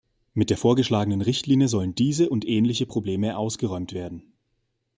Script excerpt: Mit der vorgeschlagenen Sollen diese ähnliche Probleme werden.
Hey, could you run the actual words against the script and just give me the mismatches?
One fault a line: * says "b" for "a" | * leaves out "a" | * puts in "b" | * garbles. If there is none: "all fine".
* puts in "Richtlinie"
* puts in "und"
* puts in "ausgeräumt"